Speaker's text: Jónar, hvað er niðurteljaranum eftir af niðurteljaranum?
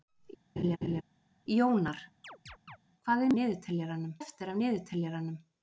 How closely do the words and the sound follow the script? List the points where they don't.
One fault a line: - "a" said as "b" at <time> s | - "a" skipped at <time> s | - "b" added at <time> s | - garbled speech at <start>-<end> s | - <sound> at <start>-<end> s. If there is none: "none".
- laugh at 0.6-1.0 s
- chirp at 2.2-2.8 s